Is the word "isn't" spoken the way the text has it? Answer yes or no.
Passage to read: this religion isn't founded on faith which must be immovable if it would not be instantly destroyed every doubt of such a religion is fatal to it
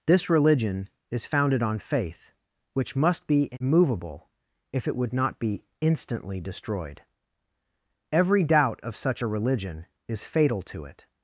no